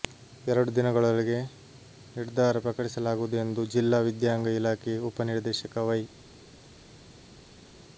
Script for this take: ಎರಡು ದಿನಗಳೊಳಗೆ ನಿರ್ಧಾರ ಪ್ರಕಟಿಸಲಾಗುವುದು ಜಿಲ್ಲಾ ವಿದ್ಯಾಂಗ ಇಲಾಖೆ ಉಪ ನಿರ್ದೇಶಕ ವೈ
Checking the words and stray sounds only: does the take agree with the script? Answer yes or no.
no